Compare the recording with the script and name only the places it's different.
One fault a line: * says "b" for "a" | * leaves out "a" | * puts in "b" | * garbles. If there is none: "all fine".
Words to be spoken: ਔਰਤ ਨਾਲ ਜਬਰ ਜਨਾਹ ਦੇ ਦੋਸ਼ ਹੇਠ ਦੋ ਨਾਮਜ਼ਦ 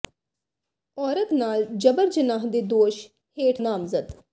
* leaves out "ਦੋ"